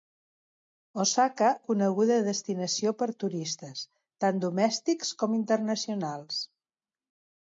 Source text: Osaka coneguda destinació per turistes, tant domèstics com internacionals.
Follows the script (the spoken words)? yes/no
yes